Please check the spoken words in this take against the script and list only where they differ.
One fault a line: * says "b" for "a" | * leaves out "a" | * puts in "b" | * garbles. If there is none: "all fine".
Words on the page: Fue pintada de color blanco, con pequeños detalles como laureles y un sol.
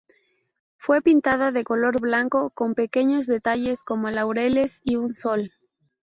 all fine